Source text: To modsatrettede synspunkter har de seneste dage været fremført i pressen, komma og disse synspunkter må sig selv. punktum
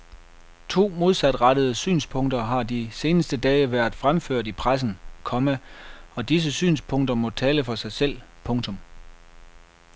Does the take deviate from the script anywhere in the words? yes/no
yes